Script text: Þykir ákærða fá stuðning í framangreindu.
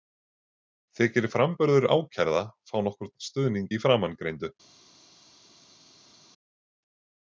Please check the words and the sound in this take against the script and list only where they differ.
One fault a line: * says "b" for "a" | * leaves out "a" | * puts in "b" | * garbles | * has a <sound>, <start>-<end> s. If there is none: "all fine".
* puts in "framburður"
* puts in "nokkurn"